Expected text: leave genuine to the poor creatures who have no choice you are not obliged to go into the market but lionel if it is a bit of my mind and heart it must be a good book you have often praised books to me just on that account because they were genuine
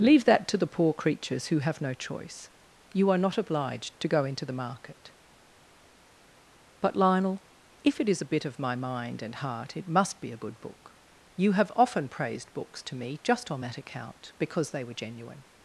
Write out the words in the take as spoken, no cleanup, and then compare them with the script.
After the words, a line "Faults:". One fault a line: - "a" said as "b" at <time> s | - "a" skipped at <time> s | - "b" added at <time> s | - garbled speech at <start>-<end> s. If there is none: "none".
leave that to the poor creatures who have no choice you are not obliged to go into the market but lionel if it is a bit of my mind and heart it must be a good book you have often praised books to me just on that account because they were genuine
Faults:
- "genuine" said as "that" at 0.2 s